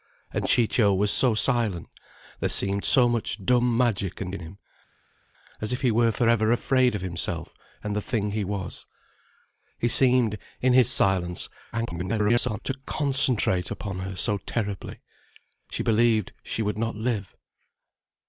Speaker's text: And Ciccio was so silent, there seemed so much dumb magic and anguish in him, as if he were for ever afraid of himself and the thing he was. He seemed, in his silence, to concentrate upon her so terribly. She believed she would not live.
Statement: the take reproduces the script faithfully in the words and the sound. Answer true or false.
false